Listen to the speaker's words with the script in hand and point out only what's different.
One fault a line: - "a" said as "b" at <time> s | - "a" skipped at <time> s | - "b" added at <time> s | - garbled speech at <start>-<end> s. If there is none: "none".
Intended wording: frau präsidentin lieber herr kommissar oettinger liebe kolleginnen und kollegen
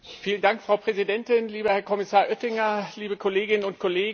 none